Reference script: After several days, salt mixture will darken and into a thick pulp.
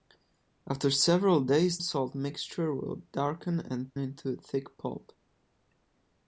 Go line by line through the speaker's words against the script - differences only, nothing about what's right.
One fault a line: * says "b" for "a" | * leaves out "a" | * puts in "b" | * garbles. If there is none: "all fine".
all fine